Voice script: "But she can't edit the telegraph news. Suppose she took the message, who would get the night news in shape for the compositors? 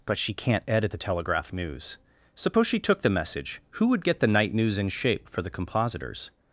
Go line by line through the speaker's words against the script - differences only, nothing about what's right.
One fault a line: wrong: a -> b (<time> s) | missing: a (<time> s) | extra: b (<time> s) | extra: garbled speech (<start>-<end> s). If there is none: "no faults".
no faults